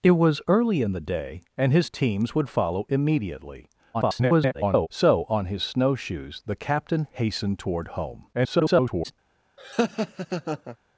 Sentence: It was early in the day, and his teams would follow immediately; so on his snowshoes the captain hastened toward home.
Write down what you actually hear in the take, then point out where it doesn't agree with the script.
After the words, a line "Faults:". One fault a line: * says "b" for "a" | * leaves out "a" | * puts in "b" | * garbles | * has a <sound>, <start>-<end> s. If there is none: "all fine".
It was early in the day, and his teams would follow immediately; [garbled] so on his snowshoes the captain hastened toward home. [garbled]
Faults:
* garbles
* garbles
* has a laugh, 9.6-10.8 s